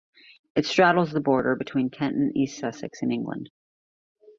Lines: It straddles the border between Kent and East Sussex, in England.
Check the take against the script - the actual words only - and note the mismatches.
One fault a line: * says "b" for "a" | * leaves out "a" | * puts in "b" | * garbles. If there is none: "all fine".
all fine